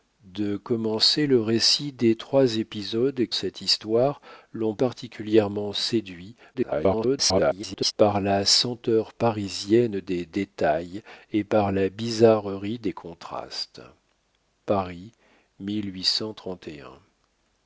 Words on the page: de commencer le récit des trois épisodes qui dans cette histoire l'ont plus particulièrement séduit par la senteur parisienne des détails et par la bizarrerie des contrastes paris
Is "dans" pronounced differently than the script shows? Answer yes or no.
yes